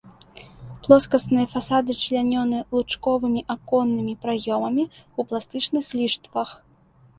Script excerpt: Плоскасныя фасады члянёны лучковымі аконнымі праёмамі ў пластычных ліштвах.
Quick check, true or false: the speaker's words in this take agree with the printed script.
true